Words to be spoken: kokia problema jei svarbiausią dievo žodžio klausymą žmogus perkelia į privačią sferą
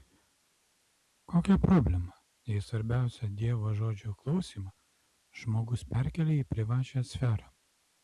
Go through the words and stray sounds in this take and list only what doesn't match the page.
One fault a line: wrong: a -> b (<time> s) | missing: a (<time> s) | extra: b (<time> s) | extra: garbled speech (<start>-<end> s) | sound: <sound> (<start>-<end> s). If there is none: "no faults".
no faults